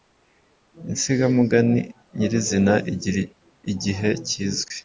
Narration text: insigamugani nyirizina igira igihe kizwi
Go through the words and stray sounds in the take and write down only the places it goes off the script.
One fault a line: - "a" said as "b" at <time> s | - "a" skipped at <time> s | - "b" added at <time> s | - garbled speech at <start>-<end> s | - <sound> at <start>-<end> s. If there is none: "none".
none